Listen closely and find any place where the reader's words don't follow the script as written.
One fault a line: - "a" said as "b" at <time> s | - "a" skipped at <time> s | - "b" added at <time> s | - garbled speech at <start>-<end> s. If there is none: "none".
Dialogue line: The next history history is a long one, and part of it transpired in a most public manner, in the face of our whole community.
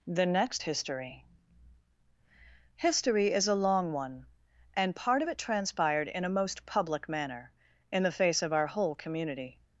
none